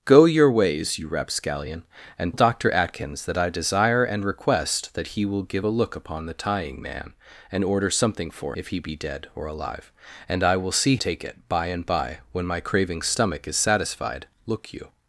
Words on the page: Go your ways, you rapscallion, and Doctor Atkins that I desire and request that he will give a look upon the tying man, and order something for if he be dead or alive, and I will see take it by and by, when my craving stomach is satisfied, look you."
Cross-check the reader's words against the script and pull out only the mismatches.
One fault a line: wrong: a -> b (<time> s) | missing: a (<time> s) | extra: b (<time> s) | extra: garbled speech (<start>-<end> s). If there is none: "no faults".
no faults